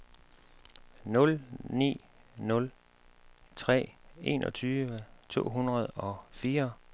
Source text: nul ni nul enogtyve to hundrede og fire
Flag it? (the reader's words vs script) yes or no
yes